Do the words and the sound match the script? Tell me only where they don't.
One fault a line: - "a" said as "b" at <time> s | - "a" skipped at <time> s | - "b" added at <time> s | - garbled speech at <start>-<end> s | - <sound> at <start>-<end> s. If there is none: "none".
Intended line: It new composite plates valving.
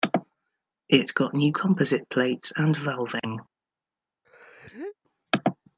- "got" added at 1.1 s
- "and" added at 2.6 s
- sneeze at 4.2-5.0 s